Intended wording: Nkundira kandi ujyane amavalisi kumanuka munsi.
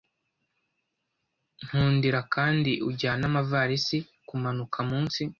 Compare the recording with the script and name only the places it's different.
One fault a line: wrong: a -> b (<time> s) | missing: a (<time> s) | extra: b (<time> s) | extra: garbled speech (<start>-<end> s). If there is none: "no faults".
no faults